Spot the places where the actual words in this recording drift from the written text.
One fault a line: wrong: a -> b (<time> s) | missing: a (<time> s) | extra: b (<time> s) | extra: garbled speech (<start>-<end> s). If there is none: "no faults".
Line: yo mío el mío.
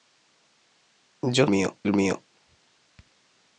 no faults